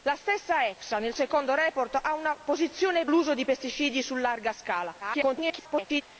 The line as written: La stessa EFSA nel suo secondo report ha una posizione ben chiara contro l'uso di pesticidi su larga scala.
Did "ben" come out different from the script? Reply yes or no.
yes